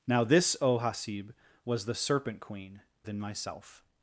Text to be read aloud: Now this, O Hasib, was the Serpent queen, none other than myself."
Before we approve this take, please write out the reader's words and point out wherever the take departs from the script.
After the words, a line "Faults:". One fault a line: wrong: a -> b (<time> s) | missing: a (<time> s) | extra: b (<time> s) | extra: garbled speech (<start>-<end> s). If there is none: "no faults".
Now this, O Hasib, was the Serpent queen, than myself."
Faults:
missing: none other (2.8 s)